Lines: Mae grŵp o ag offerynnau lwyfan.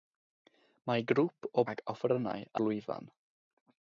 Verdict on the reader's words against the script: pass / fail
pass